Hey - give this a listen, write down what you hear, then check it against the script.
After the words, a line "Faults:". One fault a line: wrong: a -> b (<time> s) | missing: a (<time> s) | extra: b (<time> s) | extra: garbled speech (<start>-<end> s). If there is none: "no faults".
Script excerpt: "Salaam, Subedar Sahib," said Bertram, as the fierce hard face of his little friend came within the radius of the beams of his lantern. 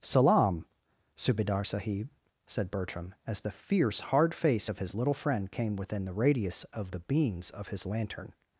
"Salaam, Subedar Sahib," said Bertram, as the fierce hard face of his little friend came within the radius of the beams of his lantern.
Faults:
no faults